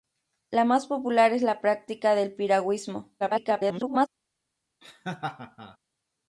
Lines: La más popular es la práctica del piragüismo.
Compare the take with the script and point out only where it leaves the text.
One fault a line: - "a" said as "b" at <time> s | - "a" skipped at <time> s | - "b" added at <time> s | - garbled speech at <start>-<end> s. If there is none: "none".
- garbled speech at 3.2-4.1 s